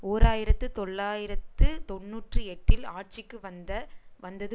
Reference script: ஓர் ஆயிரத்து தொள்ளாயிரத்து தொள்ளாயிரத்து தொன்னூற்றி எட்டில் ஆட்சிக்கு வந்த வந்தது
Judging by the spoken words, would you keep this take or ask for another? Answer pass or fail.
fail